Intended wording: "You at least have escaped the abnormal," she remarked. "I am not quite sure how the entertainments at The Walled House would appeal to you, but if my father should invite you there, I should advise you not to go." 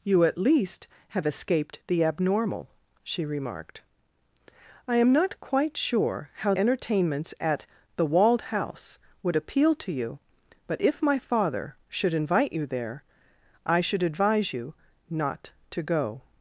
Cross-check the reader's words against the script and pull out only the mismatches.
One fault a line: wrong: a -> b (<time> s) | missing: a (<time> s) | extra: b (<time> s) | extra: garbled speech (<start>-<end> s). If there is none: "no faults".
missing: the (6.5 s)